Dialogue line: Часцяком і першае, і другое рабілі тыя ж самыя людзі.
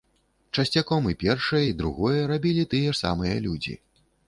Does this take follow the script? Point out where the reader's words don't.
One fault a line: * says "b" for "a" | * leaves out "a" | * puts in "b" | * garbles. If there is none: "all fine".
all fine